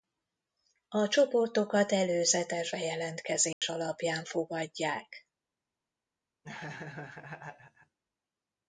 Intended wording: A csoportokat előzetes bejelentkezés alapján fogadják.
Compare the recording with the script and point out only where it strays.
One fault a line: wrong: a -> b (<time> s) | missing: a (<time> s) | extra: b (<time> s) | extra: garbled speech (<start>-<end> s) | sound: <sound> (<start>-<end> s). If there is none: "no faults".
sound: dropout (3.5-3.6 s)
sound: laugh (6.4-8.0 s)